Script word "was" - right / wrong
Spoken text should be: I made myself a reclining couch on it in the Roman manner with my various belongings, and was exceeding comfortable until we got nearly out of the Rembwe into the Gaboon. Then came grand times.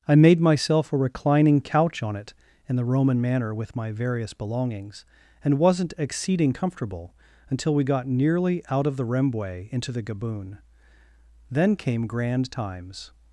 wrong